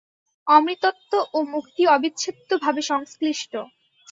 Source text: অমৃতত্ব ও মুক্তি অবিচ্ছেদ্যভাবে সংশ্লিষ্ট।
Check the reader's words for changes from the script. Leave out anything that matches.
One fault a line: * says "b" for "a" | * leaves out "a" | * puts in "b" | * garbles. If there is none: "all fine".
all fine